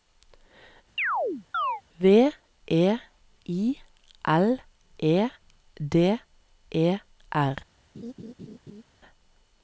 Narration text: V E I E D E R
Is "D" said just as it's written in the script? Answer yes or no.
yes